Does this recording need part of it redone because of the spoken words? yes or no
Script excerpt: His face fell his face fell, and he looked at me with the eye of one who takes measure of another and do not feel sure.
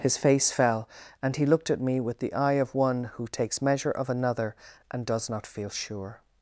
yes